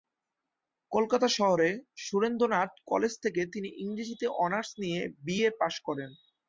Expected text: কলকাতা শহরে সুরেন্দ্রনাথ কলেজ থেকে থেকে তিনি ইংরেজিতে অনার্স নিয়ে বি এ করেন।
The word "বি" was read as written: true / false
true